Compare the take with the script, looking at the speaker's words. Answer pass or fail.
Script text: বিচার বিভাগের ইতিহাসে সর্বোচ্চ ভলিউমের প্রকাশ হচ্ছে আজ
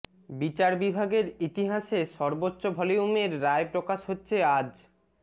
fail